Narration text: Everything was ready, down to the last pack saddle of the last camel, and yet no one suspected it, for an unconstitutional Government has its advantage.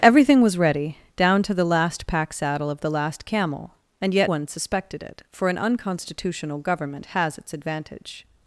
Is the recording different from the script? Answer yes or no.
yes